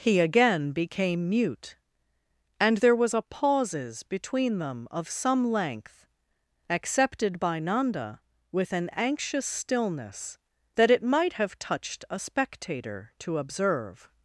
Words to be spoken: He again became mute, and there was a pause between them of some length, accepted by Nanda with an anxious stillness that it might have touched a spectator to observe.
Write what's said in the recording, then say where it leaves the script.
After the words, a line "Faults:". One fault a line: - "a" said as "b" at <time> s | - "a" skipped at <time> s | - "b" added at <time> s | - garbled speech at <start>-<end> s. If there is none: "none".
He again became mute, and there was a pauses between them of some length, accepted by Nanda with an anxious stillness that it might have touched a spectator to observe.
Faults:
- "pause" said as "pauses" at 3.2 s